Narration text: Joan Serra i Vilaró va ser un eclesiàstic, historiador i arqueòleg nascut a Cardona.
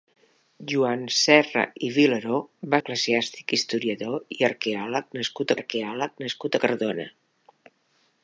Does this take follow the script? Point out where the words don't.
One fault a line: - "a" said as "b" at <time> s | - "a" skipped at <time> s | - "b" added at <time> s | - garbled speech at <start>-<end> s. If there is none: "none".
- "ser un" skipped at 2.8 s
- "arqueòleg nascut" added at 5.6 s